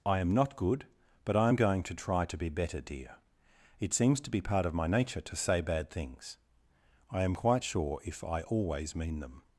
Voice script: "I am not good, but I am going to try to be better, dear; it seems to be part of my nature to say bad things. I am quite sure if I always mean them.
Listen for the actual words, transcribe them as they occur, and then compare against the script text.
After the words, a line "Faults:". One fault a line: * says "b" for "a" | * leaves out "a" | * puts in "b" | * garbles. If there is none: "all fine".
"I am not good, but I am going to try to be better, dear; it seems to be part of my nature to say bad things. I am quite sure if I always mean them.
Faults:
all fine